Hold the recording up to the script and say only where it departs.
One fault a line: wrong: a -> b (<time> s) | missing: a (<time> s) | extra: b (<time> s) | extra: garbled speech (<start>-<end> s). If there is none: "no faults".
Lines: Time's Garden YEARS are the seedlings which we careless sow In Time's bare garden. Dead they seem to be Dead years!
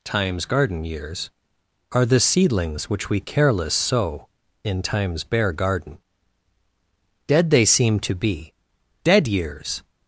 no faults